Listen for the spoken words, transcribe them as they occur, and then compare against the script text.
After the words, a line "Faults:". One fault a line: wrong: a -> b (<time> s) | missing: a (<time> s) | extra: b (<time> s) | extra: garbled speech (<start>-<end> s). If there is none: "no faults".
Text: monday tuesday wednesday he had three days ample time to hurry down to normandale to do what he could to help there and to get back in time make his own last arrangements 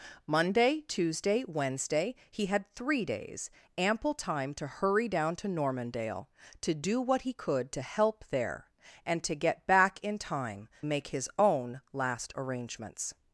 monday tuesday wednesday he had three days ample time to hurry down to normandale to do what he could to help there and to get back in time make his own last arrangements
Faults:
no faults